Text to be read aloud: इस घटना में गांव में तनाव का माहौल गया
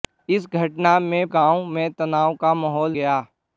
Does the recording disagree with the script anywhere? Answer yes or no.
no